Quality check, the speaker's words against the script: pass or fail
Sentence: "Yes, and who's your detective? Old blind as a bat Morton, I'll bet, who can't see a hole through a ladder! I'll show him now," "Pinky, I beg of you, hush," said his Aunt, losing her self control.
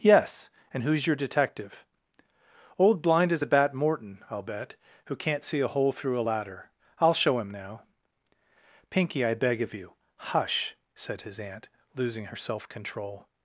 pass